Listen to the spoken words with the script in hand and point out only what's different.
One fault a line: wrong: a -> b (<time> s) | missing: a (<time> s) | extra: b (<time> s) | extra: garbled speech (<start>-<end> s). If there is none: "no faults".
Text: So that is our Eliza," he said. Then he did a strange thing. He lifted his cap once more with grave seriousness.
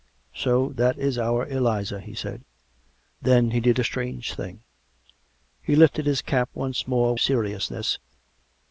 missing: with grave (7.2 s)